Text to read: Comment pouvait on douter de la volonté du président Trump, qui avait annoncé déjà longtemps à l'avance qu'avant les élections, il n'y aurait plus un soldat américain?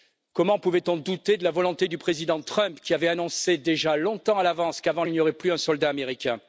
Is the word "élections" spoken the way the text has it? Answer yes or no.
no